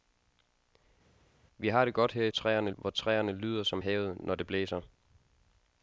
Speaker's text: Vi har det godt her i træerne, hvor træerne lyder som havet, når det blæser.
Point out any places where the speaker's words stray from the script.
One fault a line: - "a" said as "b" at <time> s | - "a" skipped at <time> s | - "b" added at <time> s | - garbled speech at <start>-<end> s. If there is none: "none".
none